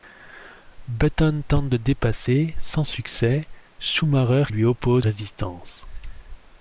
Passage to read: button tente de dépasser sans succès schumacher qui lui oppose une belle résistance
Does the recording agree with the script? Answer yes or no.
no